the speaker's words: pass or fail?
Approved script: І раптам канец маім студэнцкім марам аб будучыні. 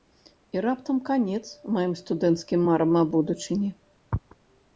pass